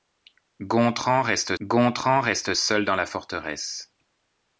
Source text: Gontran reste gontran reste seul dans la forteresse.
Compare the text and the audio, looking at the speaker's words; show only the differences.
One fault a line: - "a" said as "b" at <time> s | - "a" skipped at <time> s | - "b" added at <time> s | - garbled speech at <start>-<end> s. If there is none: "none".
none